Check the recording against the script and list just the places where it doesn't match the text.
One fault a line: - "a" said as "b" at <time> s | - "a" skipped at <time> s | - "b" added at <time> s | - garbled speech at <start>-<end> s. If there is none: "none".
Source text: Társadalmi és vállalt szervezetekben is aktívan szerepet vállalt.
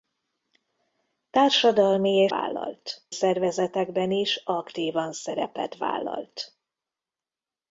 none